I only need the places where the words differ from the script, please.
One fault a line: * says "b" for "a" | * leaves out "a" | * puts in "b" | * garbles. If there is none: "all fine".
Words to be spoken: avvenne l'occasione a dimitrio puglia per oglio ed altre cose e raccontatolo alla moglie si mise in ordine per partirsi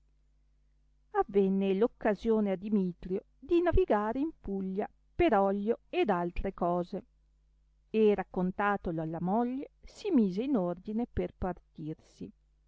* puts in "di navigare in"